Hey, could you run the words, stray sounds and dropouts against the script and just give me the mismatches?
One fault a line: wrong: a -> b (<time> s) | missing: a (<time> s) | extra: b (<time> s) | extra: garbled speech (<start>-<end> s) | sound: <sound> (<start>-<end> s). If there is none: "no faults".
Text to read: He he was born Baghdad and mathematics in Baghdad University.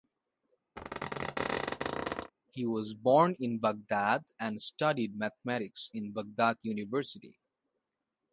sound: squeak (0.8-2.3 s)
missing: he (2.6 s)
extra: in (3.4 s)
extra: studied (4.6 s)